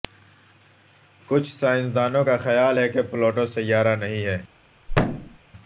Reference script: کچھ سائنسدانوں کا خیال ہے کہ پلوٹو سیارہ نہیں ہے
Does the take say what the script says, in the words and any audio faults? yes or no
no